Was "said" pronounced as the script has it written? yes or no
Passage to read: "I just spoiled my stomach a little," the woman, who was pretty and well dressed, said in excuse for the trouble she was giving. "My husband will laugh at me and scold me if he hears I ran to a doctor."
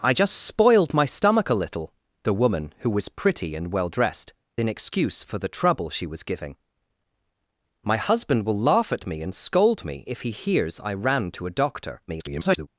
no